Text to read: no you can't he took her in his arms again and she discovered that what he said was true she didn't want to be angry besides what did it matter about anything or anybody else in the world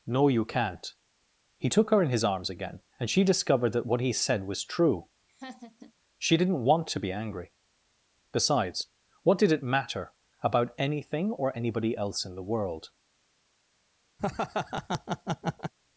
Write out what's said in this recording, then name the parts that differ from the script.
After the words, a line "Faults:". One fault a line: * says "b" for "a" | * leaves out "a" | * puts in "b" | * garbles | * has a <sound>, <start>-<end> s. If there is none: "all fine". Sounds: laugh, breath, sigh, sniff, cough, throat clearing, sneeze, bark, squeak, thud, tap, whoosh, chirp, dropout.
no you can't he took her in his arms again and she discovered that what he said was true she didn't want to be angry besides what did it matter about anything or anybody else in the world
Faults:
* has a laugh, 5.3-5.9 s
* has a laugh, 14.2-15.7 s